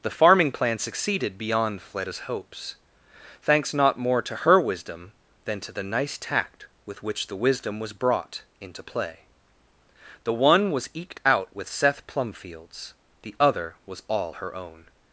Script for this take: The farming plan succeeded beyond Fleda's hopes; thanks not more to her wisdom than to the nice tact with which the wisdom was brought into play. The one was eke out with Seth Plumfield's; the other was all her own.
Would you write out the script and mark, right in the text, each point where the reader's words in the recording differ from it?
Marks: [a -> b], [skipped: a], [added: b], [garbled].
The farming plan succeeded beyond Fleda's hopes; thanks not more to her wisdom than to the nice tact with which the wisdom was brought into play. The one was [eke -> eked] out with Seth Plumfield's; the other was all her own.